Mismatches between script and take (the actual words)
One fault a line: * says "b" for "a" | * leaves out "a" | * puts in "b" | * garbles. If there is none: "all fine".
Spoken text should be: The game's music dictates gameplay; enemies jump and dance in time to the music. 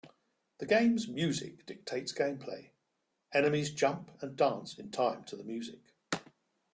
all fine